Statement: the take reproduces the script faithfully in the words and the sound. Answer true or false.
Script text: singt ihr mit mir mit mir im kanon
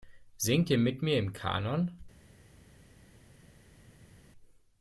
false